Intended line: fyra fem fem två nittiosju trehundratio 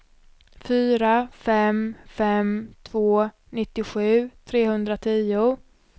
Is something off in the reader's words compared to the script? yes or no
no